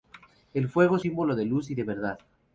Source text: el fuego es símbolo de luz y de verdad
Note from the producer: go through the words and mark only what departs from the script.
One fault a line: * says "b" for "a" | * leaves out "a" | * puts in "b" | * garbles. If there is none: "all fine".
all fine